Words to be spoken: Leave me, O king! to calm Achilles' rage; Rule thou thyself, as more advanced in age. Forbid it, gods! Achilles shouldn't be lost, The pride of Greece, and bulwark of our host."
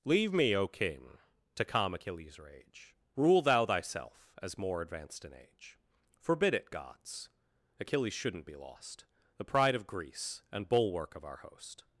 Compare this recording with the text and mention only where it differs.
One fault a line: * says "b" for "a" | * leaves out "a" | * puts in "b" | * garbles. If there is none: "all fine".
all fine